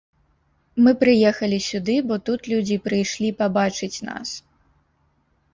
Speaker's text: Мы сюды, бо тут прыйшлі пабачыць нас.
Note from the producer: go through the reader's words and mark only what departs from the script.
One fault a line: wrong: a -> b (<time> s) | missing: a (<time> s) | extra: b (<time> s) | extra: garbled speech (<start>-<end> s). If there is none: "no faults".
extra: прыехалі (1.0 s)
extra: людзі (2.5 s)